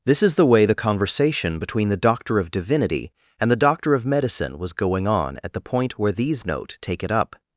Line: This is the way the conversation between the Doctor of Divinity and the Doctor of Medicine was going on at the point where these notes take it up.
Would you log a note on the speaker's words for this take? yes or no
yes